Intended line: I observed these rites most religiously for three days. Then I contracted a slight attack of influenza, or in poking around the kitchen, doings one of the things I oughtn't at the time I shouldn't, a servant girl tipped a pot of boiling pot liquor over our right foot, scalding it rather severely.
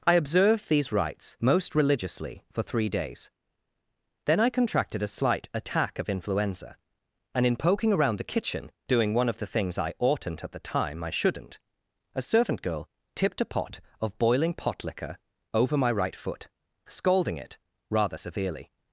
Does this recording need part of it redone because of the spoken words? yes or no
yes